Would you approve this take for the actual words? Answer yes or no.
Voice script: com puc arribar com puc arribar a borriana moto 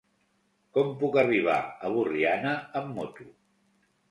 no